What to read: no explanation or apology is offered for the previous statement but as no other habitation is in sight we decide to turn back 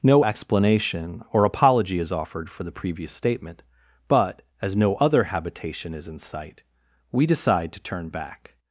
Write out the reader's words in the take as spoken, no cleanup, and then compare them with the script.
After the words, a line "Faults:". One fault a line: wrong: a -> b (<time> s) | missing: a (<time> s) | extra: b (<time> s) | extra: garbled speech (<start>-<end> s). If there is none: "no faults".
no explanation or apology is offered for the previous statement but as no other habitation is in sight we decide to turn back
Faults:
no faults